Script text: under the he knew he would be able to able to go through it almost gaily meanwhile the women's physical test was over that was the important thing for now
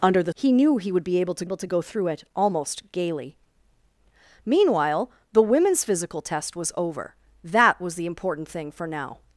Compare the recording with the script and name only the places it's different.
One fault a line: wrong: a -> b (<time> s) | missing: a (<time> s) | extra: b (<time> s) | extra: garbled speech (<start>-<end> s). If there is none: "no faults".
no faults